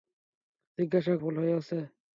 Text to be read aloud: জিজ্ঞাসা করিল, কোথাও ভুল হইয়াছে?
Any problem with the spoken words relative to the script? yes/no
yes